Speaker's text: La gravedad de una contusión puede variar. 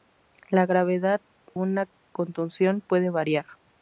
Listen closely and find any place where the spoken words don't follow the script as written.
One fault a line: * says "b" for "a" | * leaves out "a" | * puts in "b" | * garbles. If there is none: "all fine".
* leaves out "de"